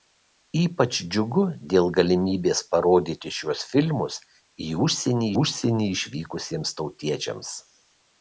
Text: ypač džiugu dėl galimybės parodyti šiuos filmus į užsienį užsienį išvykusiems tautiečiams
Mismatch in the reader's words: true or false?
false